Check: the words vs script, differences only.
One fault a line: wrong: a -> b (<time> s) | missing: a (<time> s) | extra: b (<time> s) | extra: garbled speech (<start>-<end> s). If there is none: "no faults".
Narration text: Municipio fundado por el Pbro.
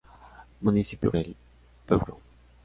missing: fundado por (1.1 s)